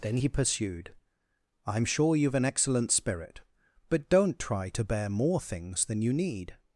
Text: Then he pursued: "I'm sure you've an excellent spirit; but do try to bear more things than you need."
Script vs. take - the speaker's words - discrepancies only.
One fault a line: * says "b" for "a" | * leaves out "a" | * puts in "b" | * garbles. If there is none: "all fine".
* says "don't" for "do"